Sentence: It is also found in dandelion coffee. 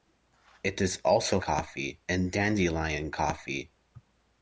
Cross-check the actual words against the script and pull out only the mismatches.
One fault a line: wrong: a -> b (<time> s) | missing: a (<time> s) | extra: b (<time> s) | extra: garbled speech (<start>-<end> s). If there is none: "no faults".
wrong: found -> coffee (1.4 s)